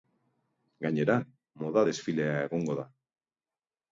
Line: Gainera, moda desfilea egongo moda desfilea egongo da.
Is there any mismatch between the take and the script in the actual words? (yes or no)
yes